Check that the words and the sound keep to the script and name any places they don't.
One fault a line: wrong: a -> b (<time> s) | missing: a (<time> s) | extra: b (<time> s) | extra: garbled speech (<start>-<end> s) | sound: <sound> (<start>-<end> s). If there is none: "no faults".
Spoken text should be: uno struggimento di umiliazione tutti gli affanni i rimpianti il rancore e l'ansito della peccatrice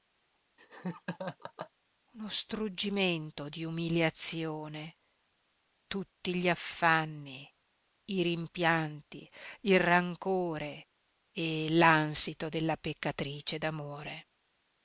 sound: laugh (0.6-1.7 s)